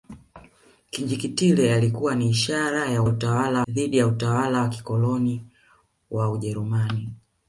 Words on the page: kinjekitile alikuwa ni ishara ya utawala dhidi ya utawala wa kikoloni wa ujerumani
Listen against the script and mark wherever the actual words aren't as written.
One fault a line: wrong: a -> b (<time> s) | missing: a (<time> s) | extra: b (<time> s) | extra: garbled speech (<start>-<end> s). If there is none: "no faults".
no faults